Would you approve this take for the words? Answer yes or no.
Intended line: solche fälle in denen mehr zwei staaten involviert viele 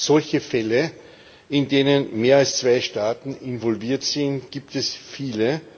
no